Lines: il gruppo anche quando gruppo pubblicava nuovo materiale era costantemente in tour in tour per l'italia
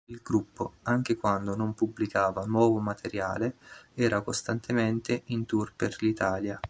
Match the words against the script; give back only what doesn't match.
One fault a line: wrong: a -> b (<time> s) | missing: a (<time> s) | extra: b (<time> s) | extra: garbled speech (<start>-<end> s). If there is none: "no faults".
wrong: gruppo -> non (1.6 s)
missing: in tour (5.7 s)